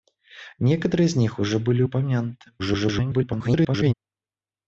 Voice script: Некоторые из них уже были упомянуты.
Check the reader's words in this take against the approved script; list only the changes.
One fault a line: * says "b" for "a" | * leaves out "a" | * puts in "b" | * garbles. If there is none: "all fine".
* garbles